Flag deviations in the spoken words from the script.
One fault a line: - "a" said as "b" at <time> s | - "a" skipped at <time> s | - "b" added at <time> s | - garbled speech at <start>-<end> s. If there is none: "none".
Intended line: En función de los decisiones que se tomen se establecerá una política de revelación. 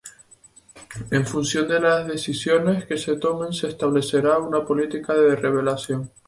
- "los" said as "las" at 1.8 s